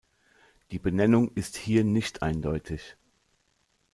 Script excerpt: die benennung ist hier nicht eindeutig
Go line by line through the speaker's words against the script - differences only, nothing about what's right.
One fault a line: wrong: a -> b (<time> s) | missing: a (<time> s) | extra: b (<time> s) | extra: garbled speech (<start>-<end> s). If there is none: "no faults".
no faults